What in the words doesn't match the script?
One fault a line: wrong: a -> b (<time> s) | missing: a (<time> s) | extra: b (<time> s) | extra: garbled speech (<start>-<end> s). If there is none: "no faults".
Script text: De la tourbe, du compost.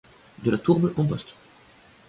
missing: du (0.9 s)